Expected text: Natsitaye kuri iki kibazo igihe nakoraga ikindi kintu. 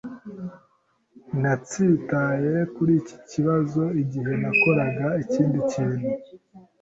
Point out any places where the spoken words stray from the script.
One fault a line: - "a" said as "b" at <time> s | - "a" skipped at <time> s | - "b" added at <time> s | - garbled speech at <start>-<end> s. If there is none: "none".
none